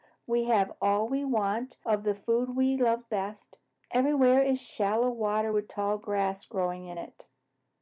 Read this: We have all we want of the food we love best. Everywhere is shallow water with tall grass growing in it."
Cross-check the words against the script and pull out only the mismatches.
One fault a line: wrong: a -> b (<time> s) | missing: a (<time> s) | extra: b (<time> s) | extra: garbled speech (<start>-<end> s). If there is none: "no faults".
no faults